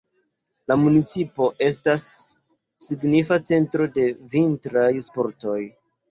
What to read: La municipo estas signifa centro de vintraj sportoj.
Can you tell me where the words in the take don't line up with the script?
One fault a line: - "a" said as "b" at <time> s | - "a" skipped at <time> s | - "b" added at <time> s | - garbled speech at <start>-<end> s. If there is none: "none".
none